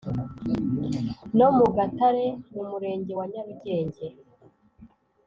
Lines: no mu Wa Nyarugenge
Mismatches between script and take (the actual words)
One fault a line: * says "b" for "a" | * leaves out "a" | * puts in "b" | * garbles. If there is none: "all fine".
* puts in "Gatare mu murenge"